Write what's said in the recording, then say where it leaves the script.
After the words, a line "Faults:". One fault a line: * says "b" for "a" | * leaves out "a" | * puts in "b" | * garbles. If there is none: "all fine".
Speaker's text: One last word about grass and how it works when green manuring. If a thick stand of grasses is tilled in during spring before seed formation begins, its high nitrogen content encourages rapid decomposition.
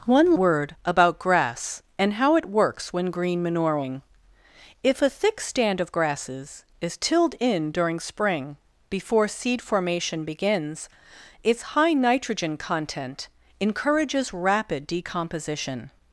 One word about grass and how it works when green manuring. If a thick stand of grasses is tilled in during spring before seed formation begins, its high nitrogen content encourages rapid decomposition.
Faults:
* leaves out "last"